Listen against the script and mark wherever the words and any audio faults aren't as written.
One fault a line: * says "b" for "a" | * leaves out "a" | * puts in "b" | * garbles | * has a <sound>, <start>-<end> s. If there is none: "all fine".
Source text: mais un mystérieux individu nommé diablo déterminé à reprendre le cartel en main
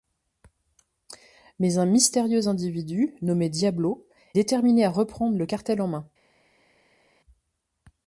all fine